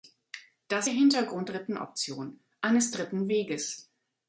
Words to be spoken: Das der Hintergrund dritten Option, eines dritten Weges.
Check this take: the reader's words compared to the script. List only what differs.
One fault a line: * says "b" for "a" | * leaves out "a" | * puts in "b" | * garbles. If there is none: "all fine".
all fine